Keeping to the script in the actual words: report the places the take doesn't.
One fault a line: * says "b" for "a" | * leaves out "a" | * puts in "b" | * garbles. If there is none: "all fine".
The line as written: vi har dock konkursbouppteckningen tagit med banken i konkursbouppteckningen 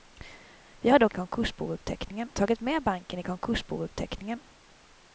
all fine